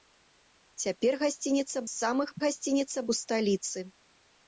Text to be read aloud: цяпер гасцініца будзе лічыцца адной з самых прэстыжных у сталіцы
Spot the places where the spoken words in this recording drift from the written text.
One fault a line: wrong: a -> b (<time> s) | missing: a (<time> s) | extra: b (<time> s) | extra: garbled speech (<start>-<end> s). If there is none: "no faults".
missing: будзе лічыцца адной (1.8 s)
wrong: прэстыжных -> гасцініца (2.5 s)